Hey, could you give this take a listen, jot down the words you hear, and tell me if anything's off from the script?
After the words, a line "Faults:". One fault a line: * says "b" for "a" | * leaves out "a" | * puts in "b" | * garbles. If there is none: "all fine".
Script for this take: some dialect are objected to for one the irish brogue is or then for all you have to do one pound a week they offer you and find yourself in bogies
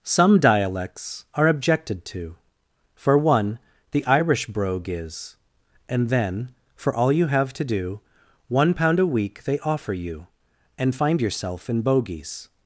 some dialects are objected to for one the irish brogue is and then for all you have to do one pound a week they offer you and find yourself in bogies
Faults:
* says "dialects" for "dialect"
* says "and" for "or"